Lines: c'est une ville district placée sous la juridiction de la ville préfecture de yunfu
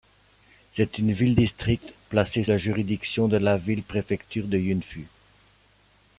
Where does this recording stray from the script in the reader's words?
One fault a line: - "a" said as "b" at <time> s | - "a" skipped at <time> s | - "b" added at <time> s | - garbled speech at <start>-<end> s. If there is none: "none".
- "sous" skipped at 2.4 s